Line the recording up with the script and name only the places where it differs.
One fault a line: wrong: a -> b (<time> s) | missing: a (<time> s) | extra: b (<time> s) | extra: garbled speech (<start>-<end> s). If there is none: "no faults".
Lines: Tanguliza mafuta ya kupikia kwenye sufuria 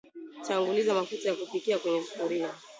no faults